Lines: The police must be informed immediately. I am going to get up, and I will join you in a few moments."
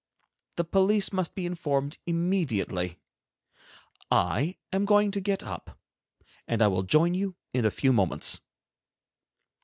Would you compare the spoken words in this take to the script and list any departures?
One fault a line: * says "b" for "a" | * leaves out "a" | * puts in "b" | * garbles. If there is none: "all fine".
all fine